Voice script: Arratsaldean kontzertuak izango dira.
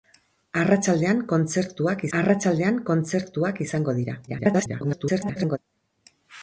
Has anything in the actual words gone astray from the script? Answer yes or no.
yes